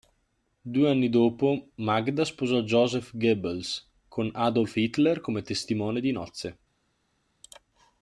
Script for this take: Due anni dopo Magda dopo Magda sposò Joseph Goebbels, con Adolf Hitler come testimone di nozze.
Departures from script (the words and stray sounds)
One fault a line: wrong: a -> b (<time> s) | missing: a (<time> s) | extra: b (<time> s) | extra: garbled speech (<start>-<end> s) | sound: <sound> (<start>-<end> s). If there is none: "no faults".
missing: dopo Magda (2.2 s)